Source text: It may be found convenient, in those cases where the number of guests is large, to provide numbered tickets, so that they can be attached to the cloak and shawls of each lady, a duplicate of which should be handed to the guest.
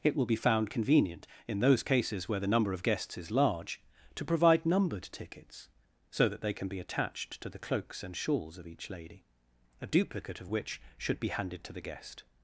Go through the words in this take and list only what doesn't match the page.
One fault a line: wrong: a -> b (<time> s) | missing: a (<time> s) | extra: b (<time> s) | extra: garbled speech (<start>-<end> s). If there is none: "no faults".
wrong: may -> will (0.1 s)
wrong: cloak -> cloaks (7.6 s)